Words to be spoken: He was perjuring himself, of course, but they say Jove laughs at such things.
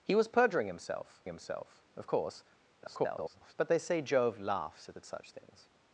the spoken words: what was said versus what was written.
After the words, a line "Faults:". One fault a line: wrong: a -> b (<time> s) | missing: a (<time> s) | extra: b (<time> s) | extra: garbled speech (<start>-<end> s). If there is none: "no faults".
He was perjuring himself himself, of course, [garbled] but they say Jove laughs at at such things.
Faults:
extra: himself (1.3 s)
extra: garbled speech (2.8-3.5 s)
extra: at (5.0 s)